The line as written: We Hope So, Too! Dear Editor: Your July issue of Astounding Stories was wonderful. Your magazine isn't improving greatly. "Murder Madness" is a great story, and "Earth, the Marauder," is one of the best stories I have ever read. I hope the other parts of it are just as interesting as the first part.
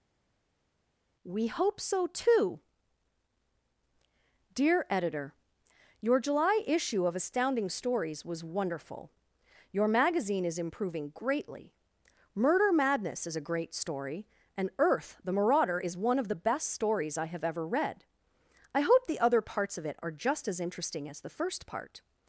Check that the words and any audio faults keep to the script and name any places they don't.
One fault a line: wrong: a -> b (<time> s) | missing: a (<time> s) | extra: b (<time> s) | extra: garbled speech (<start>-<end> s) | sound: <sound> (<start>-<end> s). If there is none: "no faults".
wrong: isn't -> is (10.4 s)